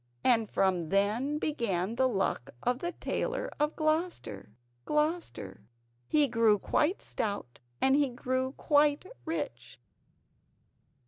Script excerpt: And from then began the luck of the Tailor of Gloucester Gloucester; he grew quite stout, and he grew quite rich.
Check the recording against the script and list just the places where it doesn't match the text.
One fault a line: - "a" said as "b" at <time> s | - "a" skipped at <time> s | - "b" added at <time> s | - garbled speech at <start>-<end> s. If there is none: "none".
none